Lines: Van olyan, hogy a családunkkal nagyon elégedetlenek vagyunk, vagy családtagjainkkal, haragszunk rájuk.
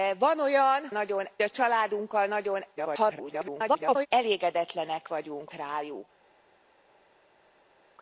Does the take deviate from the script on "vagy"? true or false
true